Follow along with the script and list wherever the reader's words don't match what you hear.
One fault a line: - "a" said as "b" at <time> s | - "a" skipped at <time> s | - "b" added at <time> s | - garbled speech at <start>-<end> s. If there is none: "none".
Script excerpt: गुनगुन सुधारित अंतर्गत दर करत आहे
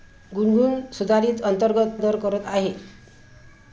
none